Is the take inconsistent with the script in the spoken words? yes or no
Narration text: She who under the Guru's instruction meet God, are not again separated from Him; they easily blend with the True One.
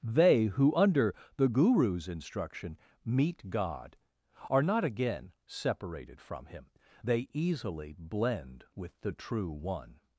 yes